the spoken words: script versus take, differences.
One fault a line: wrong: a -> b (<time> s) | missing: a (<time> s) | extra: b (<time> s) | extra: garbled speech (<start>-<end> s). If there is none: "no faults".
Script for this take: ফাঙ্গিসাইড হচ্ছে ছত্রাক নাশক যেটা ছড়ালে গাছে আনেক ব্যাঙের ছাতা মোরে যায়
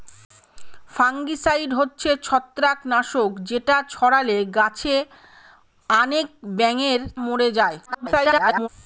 missing: ছাতা (7.0 s)
extra: garbled speech (7.8-8.7 s)